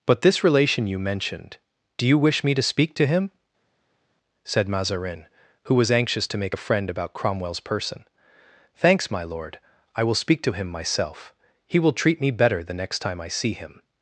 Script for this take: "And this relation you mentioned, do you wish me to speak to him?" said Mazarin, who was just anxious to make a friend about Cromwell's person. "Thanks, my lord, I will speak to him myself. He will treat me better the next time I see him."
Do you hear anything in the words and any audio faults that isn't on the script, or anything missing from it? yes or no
yes